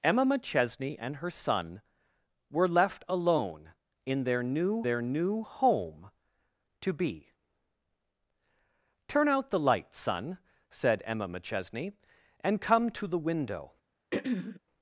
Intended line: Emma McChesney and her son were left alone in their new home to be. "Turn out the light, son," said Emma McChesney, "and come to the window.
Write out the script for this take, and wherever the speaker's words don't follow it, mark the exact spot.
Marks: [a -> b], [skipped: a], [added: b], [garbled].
Emma McChesney and her son were left alone in their new [added: their new] home to be. "Turn out the light, son," said Emma McChesney, "and come to the window.